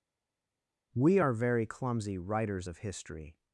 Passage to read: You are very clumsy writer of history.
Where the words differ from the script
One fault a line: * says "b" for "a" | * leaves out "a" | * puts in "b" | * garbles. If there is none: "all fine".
* says "We" for "You"
* says "writers" for "writer"